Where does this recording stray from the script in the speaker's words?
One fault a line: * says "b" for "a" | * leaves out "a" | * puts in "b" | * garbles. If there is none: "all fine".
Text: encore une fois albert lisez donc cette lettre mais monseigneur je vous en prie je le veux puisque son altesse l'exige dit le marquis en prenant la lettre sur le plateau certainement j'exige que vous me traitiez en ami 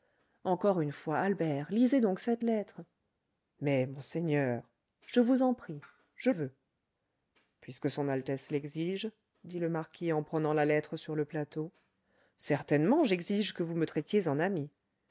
* leaves out "le"